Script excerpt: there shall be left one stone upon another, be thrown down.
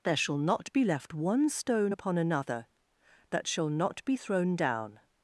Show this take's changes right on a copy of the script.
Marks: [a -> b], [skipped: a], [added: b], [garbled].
there shall [added: not] be left one stone upon another, [added: that shall not] be thrown down.